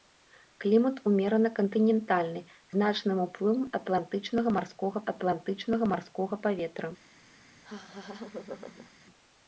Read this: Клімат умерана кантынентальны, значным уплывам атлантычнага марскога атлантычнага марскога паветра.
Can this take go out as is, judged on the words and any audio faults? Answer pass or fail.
fail